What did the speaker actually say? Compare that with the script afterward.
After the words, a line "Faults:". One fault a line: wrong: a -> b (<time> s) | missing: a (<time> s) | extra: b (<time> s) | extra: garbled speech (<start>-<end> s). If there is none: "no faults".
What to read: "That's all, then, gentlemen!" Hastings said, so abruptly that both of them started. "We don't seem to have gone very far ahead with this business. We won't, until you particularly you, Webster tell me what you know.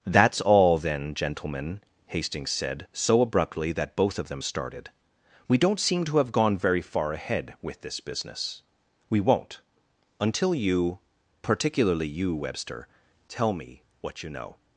"That's all, then, gentlemen!" Hastings said, so abruptly that both of them started. "We don't seem to have gone very far ahead with this business. We won't, until you particularly you, Webster tell me what you know.
Faults:
no faults